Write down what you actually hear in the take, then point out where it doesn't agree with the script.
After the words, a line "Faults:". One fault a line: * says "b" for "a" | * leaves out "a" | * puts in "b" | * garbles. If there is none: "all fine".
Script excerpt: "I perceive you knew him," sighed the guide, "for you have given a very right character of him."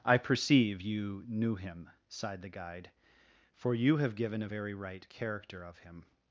"I perceive you knew him," sighed the guide, "for you have given a very right character of him."
Faults:
all fine